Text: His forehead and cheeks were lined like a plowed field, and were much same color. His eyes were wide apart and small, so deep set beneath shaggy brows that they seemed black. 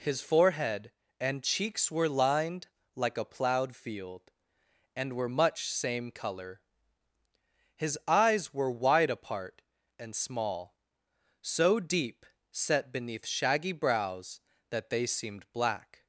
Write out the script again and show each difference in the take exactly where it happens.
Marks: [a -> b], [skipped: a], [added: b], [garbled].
His forehead and cheeks were lined like a plowed field, and were much same color. His eyes were wide apart and small, so deep set beneath shaggy brows that they seemed black.